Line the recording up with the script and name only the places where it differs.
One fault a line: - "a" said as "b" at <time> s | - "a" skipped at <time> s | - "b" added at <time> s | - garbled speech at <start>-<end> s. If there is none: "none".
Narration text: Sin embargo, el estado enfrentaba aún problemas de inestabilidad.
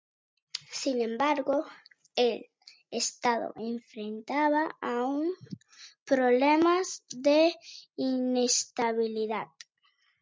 none